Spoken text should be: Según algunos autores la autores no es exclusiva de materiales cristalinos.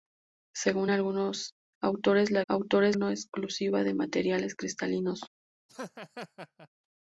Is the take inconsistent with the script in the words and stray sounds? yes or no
yes